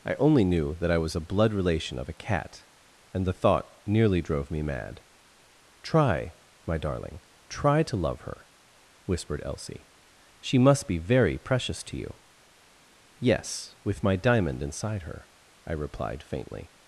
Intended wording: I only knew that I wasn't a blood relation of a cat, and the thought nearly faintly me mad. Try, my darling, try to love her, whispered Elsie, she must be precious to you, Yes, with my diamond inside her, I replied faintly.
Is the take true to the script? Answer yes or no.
no